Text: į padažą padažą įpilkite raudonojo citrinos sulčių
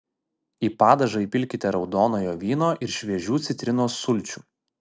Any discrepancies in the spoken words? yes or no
yes